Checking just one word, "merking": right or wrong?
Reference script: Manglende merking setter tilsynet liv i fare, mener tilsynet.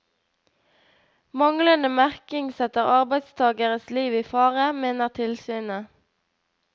right